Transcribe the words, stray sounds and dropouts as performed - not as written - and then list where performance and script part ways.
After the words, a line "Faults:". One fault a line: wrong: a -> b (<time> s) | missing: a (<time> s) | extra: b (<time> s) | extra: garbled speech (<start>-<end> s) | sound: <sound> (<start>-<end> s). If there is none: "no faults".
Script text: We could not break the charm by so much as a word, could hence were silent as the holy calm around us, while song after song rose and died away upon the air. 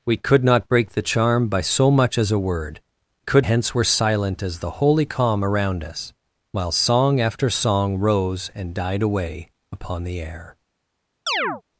We could not break the charm by so much as a word, could hence were silent as the holy calm around us, while song after song rose and died away upon the air.
Faults:
sound: chirp (11.3-11.6 s)